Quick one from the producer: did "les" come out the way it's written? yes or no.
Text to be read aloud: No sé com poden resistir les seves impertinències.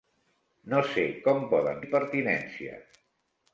no